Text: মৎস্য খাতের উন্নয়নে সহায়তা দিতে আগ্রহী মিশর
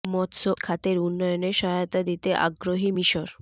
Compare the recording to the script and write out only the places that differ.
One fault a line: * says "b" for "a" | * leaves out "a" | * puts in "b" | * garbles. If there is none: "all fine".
all fine